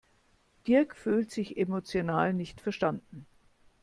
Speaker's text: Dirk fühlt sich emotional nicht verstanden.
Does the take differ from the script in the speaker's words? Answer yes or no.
no